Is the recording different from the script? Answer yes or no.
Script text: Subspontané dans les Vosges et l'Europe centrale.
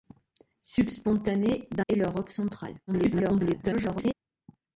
yes